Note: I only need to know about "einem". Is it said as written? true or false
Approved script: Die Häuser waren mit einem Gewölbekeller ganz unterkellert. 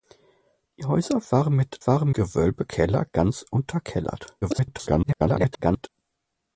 false